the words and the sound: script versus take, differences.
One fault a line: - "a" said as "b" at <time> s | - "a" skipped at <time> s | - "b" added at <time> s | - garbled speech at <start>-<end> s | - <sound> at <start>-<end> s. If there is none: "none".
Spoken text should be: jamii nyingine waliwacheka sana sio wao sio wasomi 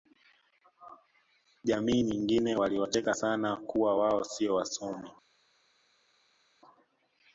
- "sio" said as "kuwa" at 3.6 s